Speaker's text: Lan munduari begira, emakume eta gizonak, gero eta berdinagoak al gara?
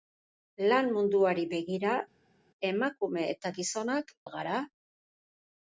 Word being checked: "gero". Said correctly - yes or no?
no